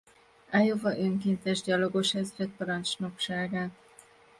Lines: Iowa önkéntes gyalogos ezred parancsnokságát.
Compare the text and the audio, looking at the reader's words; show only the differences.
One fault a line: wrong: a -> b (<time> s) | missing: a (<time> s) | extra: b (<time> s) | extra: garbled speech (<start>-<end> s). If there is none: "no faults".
no faults